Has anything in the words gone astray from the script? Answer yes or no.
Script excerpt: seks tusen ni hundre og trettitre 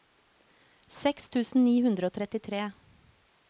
no